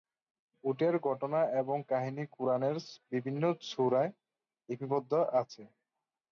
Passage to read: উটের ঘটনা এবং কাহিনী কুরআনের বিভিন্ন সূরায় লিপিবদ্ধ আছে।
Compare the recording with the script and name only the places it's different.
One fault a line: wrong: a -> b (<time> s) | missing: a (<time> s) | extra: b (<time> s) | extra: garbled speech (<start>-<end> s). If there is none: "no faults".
no faults